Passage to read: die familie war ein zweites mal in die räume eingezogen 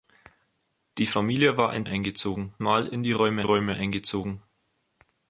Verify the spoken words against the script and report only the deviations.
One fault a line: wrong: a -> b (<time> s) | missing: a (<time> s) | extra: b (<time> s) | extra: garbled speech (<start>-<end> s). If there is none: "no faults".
wrong: zweites -> eingezogen (1.8 s)
extra: räume (3.4 s)